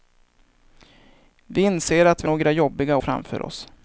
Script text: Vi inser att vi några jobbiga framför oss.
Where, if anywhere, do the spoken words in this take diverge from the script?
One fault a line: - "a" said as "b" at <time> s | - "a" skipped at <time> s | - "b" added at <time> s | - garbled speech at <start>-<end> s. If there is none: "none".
none